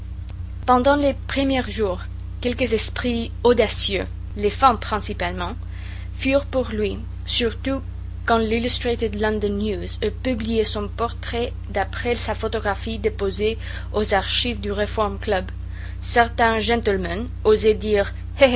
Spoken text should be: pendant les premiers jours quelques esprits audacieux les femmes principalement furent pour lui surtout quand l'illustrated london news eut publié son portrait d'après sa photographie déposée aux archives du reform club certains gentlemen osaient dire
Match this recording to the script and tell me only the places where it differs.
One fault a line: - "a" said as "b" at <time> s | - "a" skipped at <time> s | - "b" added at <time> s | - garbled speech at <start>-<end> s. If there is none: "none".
none